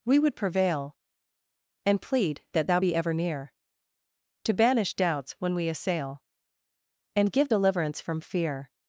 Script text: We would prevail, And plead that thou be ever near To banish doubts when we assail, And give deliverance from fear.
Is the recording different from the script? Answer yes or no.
no